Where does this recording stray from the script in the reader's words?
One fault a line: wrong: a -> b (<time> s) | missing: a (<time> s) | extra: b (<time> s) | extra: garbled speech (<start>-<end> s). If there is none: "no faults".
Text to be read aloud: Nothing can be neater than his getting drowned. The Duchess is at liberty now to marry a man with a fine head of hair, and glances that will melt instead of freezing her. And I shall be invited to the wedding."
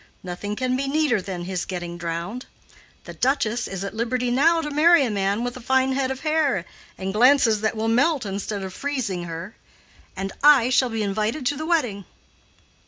no faults